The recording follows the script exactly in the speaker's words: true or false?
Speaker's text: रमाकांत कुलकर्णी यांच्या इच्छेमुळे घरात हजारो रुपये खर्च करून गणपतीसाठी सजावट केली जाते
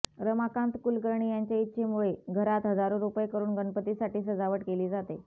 false